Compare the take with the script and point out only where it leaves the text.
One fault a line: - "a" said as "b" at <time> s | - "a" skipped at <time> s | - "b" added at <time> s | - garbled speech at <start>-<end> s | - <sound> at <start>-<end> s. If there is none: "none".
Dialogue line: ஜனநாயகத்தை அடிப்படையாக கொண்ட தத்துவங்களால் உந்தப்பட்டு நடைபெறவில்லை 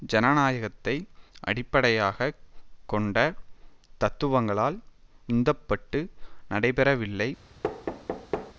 - thud at 7.6-8.5 s